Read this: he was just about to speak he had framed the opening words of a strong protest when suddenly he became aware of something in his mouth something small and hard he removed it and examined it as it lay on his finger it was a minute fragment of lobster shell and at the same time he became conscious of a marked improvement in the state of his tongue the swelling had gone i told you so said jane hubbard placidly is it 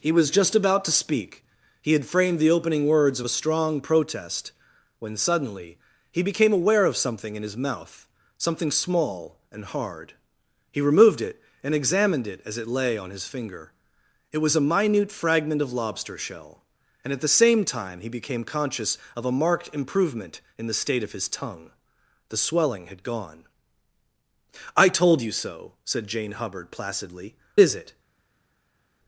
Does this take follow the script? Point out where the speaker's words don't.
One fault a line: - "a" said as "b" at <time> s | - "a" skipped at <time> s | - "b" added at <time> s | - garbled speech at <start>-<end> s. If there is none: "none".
none